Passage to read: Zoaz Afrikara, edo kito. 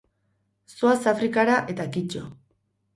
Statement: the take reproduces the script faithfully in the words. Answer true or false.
false